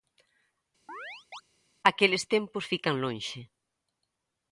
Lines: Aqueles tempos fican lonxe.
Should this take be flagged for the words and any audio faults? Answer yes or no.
yes